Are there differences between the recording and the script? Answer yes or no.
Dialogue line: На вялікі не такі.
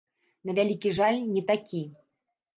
yes